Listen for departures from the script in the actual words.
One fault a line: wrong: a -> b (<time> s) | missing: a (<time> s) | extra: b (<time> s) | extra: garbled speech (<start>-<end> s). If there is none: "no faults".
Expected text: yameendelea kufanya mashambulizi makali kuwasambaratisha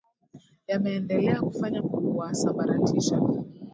missing: mashambulizi makali (1.8 s)